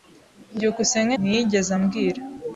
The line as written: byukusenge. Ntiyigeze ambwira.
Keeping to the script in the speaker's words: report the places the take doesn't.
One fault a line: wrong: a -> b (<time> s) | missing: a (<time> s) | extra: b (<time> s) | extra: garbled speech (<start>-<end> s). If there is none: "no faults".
no faults